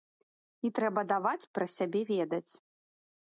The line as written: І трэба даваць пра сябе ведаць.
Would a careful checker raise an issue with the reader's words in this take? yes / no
no